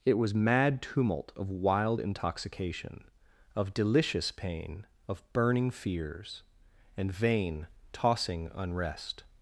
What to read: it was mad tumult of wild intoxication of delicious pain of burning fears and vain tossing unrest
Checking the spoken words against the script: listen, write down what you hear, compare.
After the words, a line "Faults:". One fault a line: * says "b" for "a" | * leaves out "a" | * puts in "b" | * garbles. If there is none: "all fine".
it was mad tumult of wild intoxication of delicious pain of burning fears and vain tossing unrest
Faults:
all fine